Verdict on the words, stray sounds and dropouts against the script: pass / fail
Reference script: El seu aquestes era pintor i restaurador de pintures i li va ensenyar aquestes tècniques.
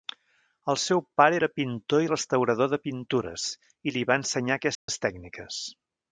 fail